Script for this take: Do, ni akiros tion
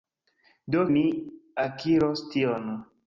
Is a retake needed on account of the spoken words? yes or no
no